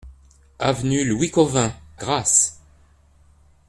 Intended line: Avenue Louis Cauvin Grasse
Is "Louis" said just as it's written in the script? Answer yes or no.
yes